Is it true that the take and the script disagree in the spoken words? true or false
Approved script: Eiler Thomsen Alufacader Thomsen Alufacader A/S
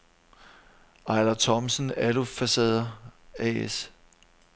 true